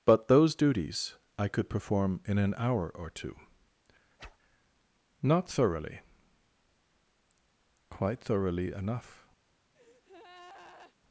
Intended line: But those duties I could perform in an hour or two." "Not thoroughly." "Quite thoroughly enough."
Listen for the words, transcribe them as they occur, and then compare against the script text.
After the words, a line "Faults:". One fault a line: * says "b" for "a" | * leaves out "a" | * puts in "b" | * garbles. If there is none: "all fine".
But those duties I could perform in an hour or two." "Not thoroughly." "Quite thoroughly enough."
Faults:
all fine